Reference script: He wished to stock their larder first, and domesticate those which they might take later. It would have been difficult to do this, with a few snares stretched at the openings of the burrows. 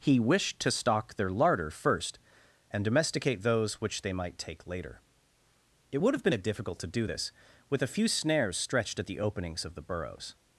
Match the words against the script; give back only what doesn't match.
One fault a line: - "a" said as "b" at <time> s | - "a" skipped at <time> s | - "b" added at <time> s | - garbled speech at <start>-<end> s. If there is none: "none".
none